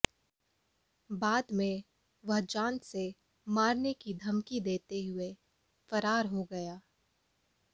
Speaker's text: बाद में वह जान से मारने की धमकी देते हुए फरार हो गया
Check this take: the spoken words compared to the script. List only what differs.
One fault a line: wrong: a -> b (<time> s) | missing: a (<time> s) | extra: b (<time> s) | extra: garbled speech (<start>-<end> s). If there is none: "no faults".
no faults